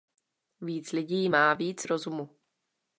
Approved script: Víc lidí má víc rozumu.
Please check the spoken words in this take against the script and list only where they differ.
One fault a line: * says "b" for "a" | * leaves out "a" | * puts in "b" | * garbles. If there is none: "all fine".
all fine